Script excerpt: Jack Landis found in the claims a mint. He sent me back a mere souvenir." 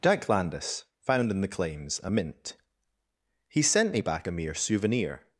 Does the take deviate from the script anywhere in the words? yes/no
no